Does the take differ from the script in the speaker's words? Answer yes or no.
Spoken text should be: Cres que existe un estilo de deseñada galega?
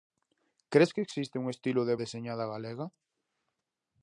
no